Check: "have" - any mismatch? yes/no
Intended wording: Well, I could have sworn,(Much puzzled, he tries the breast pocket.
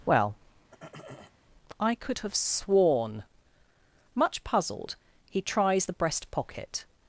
no